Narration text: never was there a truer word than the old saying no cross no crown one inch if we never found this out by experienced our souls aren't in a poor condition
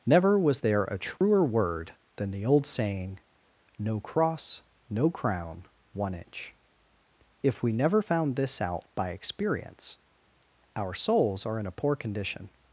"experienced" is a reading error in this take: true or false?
true